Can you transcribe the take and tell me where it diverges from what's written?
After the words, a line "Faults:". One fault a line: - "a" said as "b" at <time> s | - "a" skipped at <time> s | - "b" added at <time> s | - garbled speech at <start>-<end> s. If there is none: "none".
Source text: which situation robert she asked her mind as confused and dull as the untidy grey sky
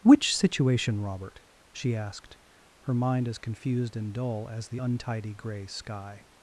which situation robert she asked her mind as confused and dull as the untidy grey sky
Faults:
none